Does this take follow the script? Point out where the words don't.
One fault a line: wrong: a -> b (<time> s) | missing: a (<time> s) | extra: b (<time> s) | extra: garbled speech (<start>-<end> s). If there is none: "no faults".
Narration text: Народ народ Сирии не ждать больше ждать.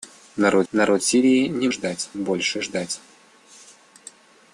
no faults